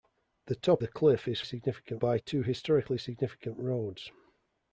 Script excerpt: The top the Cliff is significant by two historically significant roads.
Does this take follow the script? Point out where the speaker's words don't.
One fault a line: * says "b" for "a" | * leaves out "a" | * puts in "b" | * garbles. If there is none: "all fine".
all fine